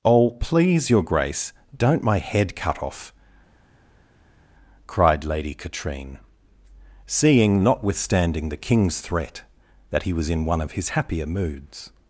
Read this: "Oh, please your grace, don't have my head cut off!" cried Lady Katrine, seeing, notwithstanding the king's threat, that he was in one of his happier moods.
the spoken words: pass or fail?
fail